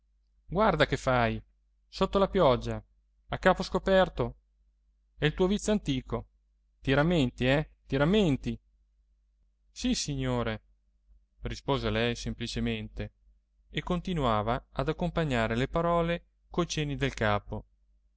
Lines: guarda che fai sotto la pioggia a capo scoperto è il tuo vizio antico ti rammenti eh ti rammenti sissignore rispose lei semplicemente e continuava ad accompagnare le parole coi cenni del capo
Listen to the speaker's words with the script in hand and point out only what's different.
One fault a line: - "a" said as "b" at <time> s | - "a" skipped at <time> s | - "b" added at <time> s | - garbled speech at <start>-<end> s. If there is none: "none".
none